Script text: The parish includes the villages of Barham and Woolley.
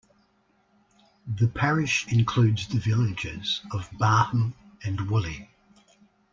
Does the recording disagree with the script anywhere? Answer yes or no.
no